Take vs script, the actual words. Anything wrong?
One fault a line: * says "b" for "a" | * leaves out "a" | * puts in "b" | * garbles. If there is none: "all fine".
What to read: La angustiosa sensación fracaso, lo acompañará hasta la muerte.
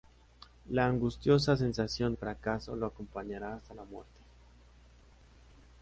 all fine